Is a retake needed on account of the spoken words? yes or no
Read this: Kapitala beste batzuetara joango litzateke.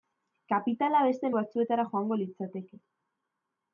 no